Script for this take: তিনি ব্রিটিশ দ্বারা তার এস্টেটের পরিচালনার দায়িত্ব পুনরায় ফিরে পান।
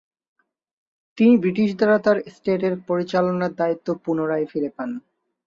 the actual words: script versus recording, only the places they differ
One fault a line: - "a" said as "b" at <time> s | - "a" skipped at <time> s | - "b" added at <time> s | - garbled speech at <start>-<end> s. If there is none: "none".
none